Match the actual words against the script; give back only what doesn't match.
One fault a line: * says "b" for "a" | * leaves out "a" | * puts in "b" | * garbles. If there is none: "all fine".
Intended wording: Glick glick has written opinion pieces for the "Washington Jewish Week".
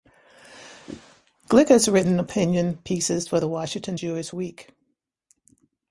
* leaves out "glick"